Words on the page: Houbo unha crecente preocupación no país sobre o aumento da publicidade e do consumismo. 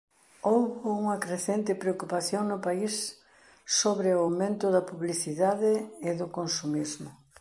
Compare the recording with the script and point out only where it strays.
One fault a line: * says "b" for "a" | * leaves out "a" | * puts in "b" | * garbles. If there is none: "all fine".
all fine